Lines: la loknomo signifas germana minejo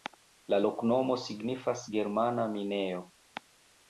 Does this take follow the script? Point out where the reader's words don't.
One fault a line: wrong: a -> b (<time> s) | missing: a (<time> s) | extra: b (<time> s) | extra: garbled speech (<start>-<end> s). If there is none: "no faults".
no faults